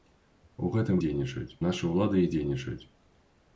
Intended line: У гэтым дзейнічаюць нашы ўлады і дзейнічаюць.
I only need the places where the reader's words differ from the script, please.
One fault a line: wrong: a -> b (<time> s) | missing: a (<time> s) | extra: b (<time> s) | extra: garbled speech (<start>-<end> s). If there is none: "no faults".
no faults